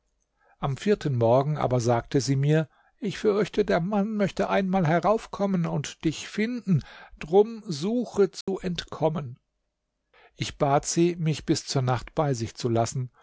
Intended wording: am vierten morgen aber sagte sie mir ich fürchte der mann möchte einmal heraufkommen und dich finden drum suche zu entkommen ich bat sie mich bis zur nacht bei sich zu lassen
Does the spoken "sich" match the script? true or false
true